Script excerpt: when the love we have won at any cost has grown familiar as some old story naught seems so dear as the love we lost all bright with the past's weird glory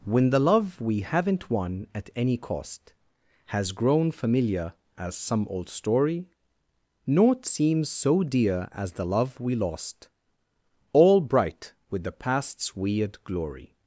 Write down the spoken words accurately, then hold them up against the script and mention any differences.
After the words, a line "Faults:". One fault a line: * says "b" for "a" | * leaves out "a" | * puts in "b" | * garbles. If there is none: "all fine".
when the love we haven't won at any cost has grown familiar as some old story naught seems so dear as the love we lost all bright with the past's weird glory
Faults:
* says "haven't" for "have"